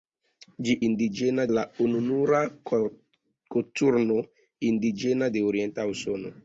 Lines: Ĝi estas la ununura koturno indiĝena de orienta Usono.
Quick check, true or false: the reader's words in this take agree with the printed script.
false